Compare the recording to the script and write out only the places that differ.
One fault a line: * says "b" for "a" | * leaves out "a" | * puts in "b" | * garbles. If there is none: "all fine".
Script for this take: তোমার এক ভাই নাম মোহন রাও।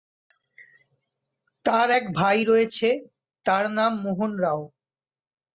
* says "তার" for "তোমার"
* puts in "রয়েছে তার"